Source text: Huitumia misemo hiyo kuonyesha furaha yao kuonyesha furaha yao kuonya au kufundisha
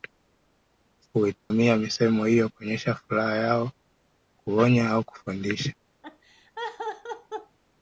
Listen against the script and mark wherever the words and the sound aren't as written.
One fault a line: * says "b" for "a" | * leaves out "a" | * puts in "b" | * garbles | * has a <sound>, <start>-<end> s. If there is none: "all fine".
* has a dropout, 1.4-1.5 s
* leaves out "kuonyesha furaha yao"
* has a laugh, 6.0-7.6 s